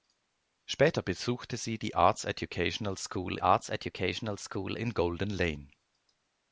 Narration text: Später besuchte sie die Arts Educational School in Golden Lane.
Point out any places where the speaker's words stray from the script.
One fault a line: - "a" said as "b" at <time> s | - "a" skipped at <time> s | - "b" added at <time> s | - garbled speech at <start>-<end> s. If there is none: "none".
- "Arts Educational School" added at 3.4 s